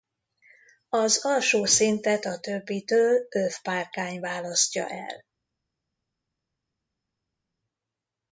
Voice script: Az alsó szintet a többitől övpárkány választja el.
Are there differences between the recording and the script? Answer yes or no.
no